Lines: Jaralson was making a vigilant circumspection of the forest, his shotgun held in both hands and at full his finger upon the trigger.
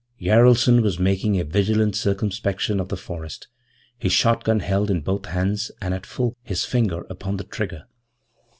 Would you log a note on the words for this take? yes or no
no